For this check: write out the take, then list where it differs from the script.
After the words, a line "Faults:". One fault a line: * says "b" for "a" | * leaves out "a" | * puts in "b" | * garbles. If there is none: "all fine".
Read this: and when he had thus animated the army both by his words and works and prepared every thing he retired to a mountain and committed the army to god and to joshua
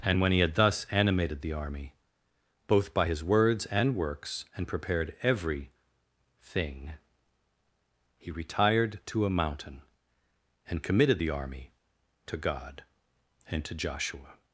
and when he had thus animated the army both by his words and works and prepared every thing he retired to a mountain and committed the army to god and to joshua
Faults:
all fine